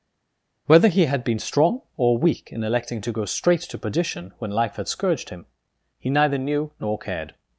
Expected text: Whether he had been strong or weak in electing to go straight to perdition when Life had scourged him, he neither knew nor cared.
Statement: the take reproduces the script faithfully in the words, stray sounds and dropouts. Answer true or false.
true